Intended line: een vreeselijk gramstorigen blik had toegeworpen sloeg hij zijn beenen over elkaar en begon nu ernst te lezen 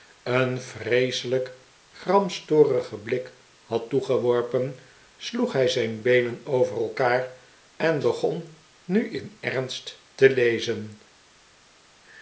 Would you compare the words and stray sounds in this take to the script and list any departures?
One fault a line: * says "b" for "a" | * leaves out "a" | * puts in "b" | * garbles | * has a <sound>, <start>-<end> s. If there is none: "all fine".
* puts in "in"